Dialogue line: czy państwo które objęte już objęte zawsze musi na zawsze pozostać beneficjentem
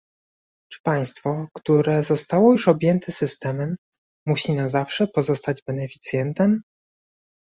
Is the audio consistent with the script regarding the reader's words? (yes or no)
no